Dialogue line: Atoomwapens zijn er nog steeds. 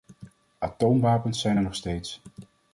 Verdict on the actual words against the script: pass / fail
pass